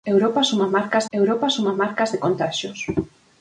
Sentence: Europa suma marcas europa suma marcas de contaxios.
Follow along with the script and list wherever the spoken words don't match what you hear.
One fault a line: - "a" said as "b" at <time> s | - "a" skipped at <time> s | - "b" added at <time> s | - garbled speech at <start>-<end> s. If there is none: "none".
none